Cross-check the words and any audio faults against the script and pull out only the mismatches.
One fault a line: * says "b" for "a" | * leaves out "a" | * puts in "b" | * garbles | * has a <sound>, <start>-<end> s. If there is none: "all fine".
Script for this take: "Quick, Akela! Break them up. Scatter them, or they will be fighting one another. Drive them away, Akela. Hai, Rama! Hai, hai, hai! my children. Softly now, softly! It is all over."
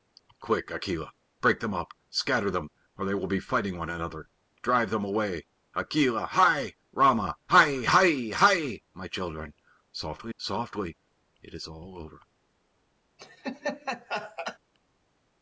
* leaves out "now"
* has a laugh, 13.2-14.6 s